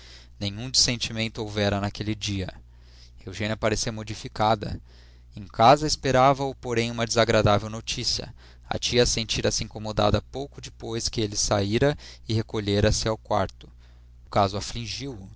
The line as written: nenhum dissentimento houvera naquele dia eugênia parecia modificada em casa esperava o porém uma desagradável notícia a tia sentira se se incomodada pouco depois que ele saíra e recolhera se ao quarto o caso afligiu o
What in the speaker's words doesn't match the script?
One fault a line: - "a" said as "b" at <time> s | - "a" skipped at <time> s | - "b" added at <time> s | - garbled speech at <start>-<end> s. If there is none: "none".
- "se" skipped at 9.6 s